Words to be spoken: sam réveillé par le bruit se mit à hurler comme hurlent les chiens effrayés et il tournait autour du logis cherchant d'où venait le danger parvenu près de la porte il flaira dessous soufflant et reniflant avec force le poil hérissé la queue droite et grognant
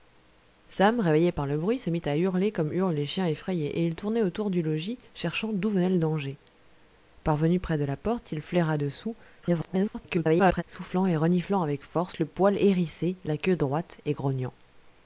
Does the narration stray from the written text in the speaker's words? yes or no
yes